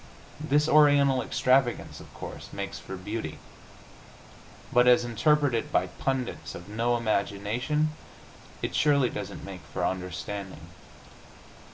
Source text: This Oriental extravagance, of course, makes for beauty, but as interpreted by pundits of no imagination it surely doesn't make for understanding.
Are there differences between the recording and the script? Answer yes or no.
no